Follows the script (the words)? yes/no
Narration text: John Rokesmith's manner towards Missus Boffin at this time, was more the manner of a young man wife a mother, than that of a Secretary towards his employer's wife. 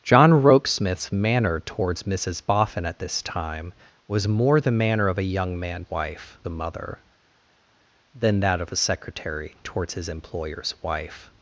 yes